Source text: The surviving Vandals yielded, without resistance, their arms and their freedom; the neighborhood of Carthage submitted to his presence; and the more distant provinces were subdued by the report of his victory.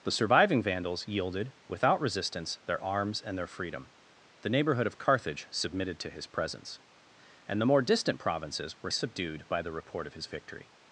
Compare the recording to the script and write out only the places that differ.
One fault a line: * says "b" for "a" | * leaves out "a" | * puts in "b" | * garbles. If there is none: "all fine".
all fine